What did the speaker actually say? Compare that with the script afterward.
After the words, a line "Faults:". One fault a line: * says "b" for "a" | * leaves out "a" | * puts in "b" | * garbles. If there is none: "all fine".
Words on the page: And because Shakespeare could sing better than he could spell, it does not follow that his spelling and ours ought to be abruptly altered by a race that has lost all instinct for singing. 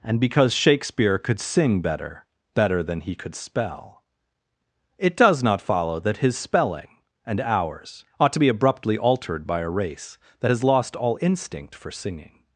And because Shakespeare could sing better better than he could spell, it does not follow that his spelling and ours ought to be abruptly altered by a race that has lost all instinct for singing.
Faults:
* puts in "better"